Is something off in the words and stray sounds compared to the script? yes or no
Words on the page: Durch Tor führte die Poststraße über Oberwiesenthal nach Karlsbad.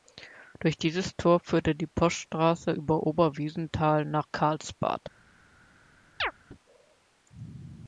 yes